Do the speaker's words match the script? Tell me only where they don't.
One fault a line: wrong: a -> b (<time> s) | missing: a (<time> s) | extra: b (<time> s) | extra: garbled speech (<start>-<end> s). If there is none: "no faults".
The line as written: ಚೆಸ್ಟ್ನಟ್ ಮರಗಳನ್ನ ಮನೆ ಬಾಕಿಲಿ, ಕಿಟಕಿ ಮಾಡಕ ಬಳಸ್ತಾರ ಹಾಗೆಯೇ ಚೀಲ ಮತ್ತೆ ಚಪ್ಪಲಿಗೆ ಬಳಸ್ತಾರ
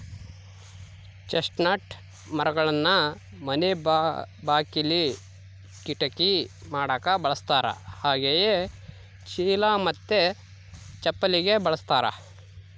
no faults